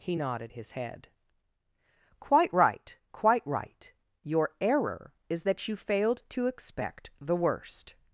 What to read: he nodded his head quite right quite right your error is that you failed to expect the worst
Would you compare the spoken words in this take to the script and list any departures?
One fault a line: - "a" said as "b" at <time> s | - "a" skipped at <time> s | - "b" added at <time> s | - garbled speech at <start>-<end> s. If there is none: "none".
none